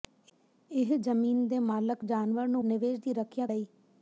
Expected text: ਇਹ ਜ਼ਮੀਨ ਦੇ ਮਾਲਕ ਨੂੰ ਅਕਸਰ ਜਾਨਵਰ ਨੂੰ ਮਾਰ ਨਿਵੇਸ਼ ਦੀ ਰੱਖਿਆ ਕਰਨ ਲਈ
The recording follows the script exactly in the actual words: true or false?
false